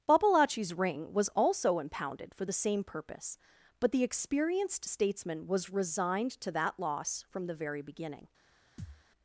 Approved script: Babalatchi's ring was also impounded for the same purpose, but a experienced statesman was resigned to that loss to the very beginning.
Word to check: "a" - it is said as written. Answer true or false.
false